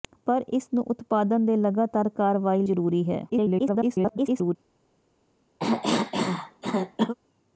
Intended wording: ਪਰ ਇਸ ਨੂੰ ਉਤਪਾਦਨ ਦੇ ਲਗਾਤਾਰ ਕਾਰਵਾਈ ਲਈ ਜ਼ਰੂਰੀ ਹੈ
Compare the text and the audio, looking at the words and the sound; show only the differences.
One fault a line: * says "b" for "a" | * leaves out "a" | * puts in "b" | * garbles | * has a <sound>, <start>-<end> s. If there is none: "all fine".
* leaves out "ਲਈ"
* garbles
* has a cough, 5.6-7.1 s